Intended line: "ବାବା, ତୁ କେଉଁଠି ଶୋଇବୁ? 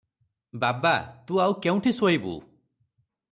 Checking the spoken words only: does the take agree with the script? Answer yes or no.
no